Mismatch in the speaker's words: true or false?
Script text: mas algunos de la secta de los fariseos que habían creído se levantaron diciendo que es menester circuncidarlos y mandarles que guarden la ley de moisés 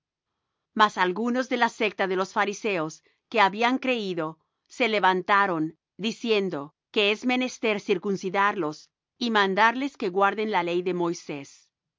false